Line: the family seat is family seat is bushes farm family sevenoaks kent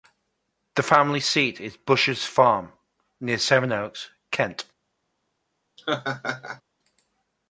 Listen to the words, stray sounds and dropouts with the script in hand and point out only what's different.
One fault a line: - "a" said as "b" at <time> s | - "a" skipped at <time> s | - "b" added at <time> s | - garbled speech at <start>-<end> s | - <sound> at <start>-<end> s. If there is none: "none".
- "family seat is" skipped at 1.8 s
- "family" said as "near" at 3.2 s
- laugh at 5.8-6.6 s